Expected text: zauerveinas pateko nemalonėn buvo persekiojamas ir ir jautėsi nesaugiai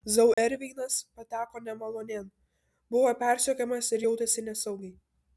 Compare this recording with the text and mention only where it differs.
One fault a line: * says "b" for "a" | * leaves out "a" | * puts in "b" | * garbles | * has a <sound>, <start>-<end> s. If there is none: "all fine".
* has a dropout, 0.3-0.4 s
* leaves out "ir"